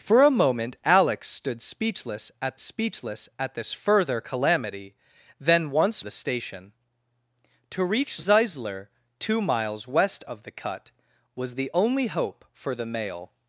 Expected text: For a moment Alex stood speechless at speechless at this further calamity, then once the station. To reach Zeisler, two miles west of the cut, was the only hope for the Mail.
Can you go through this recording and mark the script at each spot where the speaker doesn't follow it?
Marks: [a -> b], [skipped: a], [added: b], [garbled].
For a moment Alex stood speechless at speechless at this further calamity, then once the station. To reach Zeisler, two miles west of the cut, was the only hope for the Mail.